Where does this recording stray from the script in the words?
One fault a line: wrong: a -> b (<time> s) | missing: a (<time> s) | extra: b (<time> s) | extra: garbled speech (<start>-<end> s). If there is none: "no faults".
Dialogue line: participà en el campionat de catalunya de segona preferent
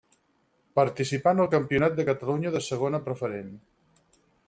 no faults